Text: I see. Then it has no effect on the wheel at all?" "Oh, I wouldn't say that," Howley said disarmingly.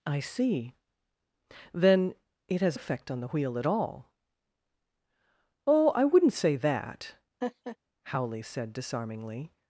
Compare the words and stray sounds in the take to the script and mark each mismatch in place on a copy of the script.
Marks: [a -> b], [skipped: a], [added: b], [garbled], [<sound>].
I see. Then it has [skipped: no] effect on the wheel at all?" "Oh, I wouldn't say that," [laugh] Howley said disarmingly.